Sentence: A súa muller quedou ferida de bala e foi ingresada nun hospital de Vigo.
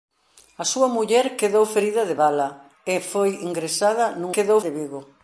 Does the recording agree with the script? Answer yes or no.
no